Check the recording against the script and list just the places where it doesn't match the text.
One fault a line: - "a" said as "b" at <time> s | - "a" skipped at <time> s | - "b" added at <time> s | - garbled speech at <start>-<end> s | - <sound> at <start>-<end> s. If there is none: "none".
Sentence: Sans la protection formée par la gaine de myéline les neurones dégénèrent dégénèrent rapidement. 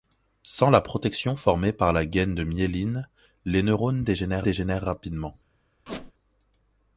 - squeak at 5.9-6.1 s